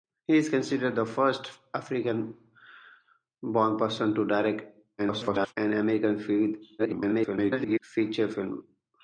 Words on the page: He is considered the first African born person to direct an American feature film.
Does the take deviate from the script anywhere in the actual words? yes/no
yes